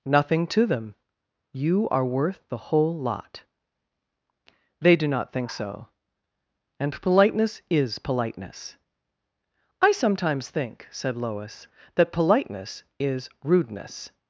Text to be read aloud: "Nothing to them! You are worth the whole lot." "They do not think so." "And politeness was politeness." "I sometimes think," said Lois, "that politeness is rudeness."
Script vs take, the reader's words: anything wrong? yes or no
yes